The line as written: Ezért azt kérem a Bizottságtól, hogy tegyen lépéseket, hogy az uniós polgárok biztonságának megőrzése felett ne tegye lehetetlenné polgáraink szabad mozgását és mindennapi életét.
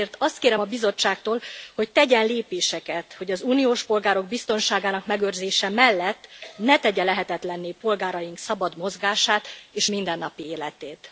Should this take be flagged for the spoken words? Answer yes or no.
yes